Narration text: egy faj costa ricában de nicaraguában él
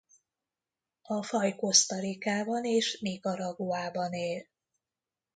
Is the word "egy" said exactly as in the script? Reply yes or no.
no